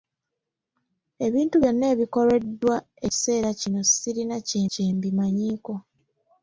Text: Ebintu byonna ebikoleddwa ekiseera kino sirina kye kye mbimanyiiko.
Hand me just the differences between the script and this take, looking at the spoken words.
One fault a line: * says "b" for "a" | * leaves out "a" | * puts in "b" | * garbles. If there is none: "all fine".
all fine